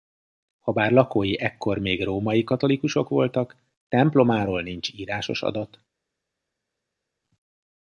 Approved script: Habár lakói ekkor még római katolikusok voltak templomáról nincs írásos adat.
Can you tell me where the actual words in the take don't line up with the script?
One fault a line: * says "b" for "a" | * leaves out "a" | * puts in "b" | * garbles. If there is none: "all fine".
all fine